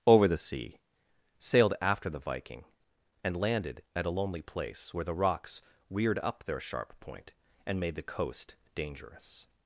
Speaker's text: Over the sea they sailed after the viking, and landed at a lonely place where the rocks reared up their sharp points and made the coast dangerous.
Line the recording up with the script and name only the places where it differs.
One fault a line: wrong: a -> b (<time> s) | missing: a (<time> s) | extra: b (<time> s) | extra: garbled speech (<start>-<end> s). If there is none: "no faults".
missing: they (0.8 s)
wrong: points -> point (7.0 s)